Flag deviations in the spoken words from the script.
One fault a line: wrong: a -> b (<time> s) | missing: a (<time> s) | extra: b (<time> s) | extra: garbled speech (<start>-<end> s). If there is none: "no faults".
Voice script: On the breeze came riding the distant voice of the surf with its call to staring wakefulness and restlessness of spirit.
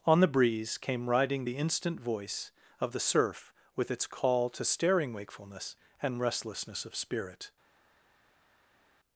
wrong: distant -> instant (1.6 s)